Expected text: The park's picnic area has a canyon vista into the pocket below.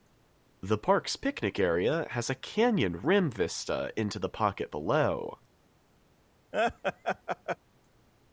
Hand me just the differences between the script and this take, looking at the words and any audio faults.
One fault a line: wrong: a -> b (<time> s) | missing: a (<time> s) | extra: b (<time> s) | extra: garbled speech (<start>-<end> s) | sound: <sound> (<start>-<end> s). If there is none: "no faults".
extra: rim (3.0 s)
sound: laugh (6.5-7.6 s)